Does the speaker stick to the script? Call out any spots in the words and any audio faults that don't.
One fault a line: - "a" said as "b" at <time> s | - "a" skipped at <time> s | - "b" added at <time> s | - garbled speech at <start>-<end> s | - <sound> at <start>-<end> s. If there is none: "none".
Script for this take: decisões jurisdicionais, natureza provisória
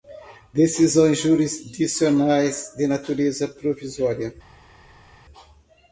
- "de" added at 2.8 s